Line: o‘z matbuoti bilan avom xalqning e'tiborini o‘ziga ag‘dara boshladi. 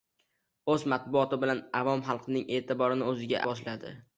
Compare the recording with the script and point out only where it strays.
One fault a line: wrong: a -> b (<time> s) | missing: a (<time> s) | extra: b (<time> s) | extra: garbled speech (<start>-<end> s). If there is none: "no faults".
missing: ag‘dara (3.4 s)